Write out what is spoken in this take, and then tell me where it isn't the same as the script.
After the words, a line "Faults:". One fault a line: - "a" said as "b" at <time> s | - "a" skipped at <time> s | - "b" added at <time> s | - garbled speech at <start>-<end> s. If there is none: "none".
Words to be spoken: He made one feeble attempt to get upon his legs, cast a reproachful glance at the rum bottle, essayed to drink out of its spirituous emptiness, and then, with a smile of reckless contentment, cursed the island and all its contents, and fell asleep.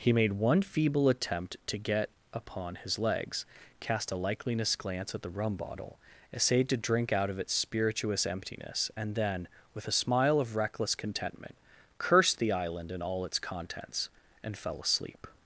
He made one feeble attempt to get upon his legs, cast a likeliness glance at the rum bottle, essayed to drink out of its spirituous emptiness, and then, with a smile of reckless contentment, cursed the island and all its contents, and fell asleep.
Faults:
- "reproachful" said as "likeliness" at 4.2 s